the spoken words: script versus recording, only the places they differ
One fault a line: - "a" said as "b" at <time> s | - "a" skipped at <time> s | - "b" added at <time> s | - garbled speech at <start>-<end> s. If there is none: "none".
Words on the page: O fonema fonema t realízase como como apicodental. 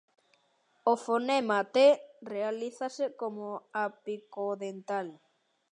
- "fonema" skipped at 1.6 s
- "como" skipped at 3.5 s